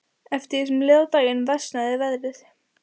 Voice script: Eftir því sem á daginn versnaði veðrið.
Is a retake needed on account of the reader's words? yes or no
yes